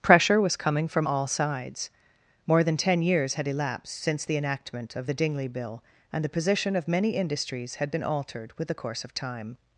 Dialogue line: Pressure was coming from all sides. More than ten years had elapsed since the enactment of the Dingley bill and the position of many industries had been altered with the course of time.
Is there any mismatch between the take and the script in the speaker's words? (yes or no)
no